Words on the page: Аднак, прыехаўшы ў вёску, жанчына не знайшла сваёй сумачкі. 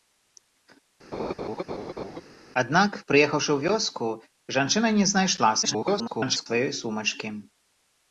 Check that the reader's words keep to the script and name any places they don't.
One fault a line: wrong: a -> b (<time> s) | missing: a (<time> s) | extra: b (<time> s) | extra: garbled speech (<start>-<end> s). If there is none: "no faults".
extra: garbled speech (5.6-6.5 s)